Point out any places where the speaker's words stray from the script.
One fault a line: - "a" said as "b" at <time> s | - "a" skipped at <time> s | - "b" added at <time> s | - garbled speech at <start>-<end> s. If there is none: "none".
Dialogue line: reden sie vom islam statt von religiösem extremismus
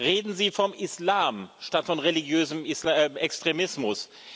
none